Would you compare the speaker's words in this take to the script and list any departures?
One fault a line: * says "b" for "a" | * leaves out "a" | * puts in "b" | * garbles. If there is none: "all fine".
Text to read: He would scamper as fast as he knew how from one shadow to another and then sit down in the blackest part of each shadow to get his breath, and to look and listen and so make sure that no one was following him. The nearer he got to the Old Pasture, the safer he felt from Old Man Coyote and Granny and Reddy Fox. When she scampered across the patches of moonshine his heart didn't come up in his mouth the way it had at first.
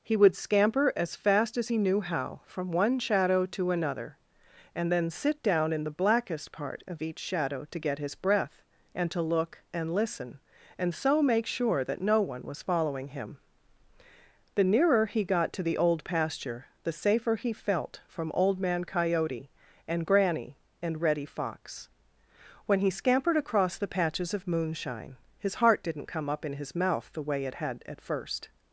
* says "he" for "she"